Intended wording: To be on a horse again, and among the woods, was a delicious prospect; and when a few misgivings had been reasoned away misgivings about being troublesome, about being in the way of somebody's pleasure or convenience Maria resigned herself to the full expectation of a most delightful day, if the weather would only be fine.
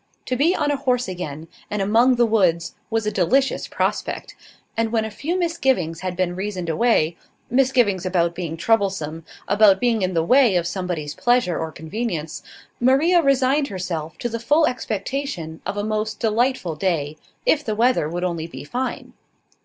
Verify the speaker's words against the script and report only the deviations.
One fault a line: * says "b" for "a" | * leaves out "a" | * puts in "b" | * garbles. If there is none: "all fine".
all fine